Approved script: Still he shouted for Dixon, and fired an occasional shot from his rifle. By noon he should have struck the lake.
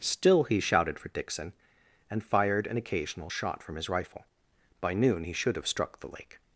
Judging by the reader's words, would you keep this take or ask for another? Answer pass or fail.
pass